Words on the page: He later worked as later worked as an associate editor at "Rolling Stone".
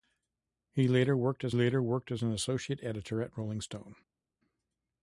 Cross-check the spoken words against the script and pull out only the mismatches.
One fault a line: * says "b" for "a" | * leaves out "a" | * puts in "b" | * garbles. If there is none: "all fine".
all fine